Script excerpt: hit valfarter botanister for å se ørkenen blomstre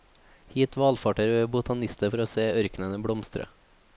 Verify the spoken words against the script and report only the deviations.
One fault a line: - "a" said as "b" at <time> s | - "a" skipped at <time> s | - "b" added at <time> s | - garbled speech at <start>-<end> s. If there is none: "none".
none